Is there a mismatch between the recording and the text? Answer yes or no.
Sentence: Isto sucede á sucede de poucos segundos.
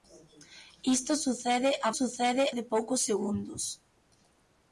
no